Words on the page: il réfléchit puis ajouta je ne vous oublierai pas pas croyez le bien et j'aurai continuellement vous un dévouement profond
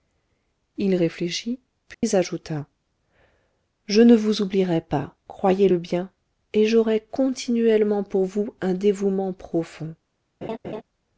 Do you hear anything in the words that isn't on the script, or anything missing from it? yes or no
yes